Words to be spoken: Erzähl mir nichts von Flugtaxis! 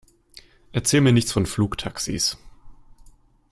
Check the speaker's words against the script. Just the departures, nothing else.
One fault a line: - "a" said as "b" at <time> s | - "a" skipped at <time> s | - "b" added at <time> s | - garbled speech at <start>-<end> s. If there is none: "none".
none